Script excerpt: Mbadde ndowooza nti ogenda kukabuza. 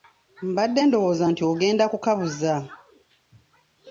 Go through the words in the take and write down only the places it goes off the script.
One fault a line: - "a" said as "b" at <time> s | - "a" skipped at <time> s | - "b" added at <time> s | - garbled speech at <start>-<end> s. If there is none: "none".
none